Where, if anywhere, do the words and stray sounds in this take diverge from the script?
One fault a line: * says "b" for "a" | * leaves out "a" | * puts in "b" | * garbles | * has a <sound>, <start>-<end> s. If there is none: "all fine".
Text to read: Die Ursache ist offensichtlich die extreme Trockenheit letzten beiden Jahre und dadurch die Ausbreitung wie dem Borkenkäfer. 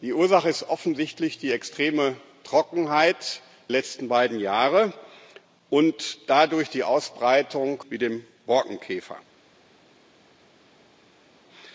all fine